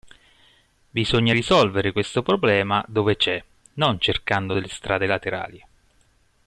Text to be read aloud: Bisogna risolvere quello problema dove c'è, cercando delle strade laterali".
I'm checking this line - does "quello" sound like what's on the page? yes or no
no